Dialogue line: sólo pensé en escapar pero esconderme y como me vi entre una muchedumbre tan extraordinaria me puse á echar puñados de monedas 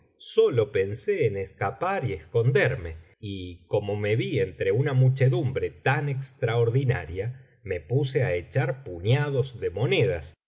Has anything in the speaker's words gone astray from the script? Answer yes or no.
yes